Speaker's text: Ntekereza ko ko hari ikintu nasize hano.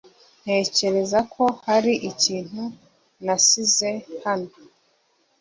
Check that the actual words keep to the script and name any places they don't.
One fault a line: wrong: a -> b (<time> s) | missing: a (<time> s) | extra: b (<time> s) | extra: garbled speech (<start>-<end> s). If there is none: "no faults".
missing: ko (1.4 s)